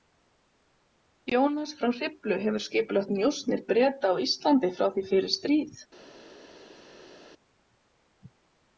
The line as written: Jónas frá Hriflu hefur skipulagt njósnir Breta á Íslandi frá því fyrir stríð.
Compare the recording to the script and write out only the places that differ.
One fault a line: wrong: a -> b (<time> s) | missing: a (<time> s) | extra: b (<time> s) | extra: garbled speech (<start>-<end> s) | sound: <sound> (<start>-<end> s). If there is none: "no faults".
no faults